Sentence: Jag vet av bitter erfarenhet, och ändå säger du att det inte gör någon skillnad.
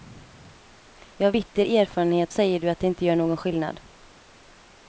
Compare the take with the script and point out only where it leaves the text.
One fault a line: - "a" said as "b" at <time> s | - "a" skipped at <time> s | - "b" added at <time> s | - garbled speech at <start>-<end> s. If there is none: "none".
- "vet av" skipped at 1.3 s
- "och ändå" skipped at 2.3 s